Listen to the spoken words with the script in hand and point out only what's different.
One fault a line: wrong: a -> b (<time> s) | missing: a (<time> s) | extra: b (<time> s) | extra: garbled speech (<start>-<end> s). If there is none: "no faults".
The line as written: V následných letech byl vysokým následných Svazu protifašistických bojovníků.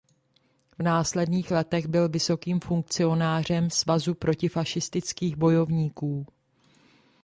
wrong: následných -> funkcionářem (2.6 s)